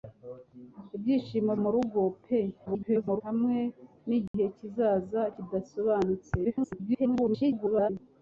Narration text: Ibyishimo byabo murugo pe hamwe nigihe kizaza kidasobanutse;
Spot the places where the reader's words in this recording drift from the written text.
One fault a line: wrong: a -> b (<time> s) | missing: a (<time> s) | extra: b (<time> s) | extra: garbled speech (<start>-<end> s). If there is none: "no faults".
missing: byabo (1.5 s)
extra: garbled speech (2.7-3.2 s)
extra: garbled speech (6.4-7.9 s)